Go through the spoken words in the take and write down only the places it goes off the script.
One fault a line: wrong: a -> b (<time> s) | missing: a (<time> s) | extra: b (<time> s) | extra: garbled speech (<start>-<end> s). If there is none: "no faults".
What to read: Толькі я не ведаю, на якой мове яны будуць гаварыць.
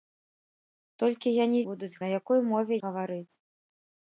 wrong: ведаю -> будуць (1.7 s)
missing: яны будуць (2.7 s)